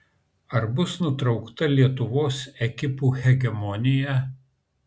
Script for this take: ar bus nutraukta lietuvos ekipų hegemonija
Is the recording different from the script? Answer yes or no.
no